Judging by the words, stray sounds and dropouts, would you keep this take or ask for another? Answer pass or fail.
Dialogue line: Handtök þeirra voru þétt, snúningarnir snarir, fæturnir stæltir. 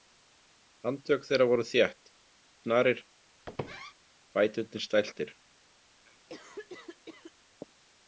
fail